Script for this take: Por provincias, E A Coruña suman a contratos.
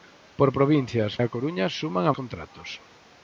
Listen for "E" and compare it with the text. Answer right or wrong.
right